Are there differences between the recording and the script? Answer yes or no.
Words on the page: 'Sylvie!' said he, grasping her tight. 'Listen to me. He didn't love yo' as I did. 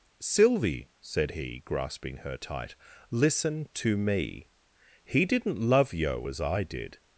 no